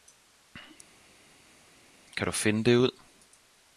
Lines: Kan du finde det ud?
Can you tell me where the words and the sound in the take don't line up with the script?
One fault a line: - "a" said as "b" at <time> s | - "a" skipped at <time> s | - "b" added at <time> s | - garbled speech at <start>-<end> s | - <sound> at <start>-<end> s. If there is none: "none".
none